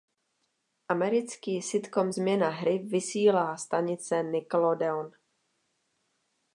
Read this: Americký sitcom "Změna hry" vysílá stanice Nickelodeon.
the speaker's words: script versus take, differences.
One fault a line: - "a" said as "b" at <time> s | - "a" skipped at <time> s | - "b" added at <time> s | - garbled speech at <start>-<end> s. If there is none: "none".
none